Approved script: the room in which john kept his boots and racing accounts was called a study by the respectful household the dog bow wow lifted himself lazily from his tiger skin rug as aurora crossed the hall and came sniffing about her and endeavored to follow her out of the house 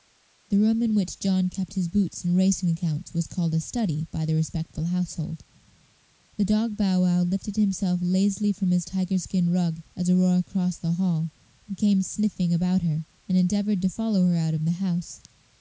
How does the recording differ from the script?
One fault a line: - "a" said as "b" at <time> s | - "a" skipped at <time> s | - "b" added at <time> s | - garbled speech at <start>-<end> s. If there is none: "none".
none